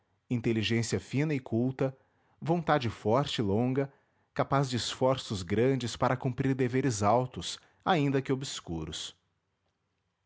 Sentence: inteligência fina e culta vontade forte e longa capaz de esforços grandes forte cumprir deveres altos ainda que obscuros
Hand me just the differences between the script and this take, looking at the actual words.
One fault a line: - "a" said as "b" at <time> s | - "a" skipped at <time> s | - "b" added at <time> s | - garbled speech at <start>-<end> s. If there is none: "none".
- "forte" said as "para" at 6.0 s